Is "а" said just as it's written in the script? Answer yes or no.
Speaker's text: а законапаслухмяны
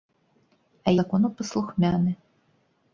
yes